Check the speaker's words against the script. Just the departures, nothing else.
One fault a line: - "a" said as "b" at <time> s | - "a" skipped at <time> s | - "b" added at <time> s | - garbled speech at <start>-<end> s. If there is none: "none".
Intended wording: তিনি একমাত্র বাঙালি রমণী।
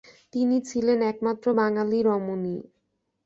- "ছিলেন" added at 0.7 s